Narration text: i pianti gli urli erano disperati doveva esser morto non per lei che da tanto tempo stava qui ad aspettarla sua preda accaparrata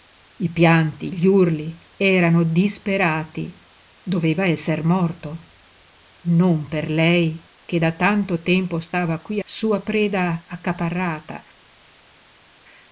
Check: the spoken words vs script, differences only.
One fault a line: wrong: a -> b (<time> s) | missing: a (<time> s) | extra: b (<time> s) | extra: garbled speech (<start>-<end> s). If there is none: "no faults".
missing: ad aspettarla (9.4 s)